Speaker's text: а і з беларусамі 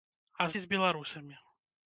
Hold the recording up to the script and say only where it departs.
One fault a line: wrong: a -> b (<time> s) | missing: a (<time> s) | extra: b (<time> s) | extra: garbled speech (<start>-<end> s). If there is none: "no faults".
no faults